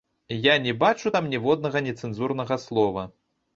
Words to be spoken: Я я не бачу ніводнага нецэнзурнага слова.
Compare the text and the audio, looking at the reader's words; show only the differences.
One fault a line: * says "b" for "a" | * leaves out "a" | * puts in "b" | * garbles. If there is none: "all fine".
* leaves out "я"
* puts in "там"